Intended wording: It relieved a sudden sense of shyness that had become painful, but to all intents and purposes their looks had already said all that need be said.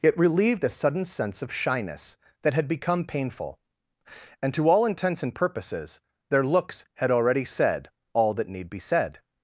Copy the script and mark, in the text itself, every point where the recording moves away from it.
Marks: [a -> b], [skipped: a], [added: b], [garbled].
It relieved a sudden sense of shyness that had become painful, [but -> and] to all intents and purposes their looks had already said all that need be said.